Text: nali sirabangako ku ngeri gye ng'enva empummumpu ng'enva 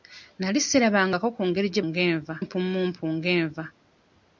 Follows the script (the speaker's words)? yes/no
yes